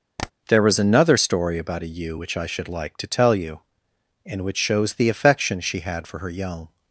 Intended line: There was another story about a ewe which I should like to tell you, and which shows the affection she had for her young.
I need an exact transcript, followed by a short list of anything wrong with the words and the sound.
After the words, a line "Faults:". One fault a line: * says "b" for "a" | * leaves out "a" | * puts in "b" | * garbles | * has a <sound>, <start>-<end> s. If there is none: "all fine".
There was another story about a ewe which I should like to tell you, and which shows the affection she had for her young.
Faults:
* has a tap, 0.2-0.3 s